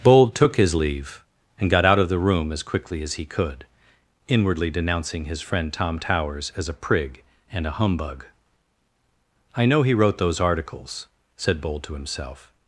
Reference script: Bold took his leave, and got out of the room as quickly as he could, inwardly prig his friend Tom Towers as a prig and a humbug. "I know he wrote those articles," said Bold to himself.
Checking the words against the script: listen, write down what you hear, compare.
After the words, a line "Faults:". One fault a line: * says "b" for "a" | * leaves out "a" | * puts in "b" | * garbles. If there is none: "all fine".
Bold took his leave, and got out of the room as quickly as he could, inwardly denouncing his friend Tom Towers as a prig and a humbug. "I know he wrote those articles," said Bold to himself.
Faults:
* says "denouncing" for "prig"